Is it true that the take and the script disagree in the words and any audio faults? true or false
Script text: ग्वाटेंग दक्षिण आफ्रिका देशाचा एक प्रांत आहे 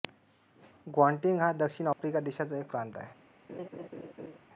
true